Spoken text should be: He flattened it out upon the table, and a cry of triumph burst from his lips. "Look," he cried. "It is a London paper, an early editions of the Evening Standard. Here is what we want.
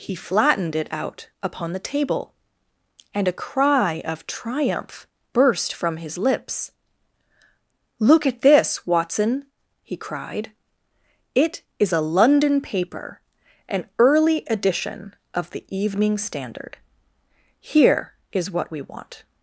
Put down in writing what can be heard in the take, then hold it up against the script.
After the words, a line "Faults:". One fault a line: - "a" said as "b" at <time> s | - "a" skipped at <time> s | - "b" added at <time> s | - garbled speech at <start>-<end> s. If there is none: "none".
He flattened it out upon the table, and a cry of triumph burst from his lips. "Look at this, Watson," he cried. "It is a London paper, an early edition of the Evening Standard. Here is what we want.
Faults:
- "at this Watson" added at 8.2 s
- "editions" said as "edition" at 14.5 s